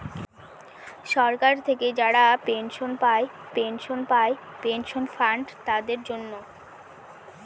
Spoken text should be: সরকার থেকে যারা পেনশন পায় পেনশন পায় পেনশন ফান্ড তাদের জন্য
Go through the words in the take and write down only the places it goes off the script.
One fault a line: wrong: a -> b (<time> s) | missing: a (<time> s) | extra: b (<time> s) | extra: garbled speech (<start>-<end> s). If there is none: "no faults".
no faults